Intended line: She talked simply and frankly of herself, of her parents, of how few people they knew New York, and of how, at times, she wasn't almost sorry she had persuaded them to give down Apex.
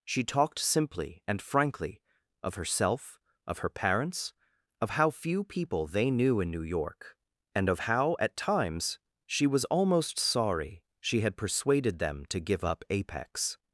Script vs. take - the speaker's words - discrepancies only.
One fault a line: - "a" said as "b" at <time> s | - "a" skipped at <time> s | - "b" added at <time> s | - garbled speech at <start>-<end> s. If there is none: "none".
- "in" added at 6.4 s
- "wasn't" said as "was" at 9.5 s
- "down" said as "up" at 12.6 s